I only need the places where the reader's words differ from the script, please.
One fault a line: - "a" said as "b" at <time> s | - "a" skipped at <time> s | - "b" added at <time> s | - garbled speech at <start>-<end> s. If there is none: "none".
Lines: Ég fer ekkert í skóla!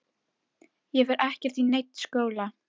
- "neinn" added at 1.7 s